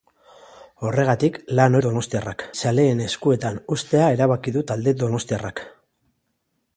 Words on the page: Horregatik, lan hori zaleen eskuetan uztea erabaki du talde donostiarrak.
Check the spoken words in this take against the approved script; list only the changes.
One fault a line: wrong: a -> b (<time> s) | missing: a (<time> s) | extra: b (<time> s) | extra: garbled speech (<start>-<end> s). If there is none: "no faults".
wrong: hori -> donostiarrak (1.9 s)